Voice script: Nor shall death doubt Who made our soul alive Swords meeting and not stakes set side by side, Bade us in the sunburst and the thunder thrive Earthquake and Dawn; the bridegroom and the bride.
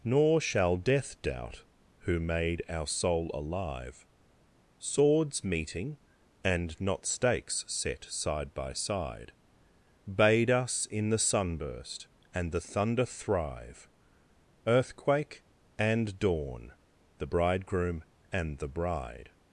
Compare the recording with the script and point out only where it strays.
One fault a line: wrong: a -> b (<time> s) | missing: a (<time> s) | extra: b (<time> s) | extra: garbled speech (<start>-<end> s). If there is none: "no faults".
no faults